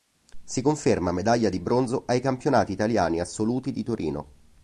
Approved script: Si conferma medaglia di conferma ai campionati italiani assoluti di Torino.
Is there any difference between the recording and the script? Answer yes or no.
yes